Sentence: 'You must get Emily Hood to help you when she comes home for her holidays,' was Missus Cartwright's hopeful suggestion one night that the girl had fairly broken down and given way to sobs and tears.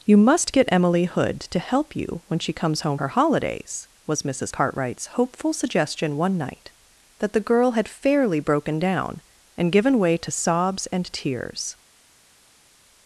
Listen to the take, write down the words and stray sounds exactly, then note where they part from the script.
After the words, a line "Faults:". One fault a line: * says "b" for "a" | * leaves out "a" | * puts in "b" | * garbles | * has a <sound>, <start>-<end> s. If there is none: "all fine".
'You must get Emily Hood to help you when she comes home her holidays,' was Missus Cartwright's hopeful suggestion one night that the girl had fairly broken down and given way to sobs and tears.
Faults:
* leaves out "for"